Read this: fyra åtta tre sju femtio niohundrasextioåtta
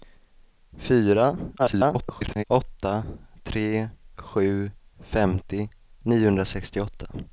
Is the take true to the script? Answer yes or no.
no